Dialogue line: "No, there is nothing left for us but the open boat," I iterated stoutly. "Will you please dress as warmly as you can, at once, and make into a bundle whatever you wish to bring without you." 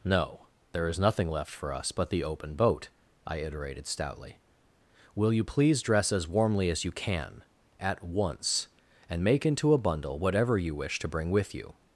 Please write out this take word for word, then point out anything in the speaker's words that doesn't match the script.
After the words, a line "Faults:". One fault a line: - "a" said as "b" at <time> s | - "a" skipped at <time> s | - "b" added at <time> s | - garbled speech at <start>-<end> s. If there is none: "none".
"No, there is nothing left for us but the open boat," I iterated stoutly. "Will you please dress as warmly as you can, at once, and make into a bundle whatever you wish to bring with you."
Faults:
- "without" said as "with" at 11.3 s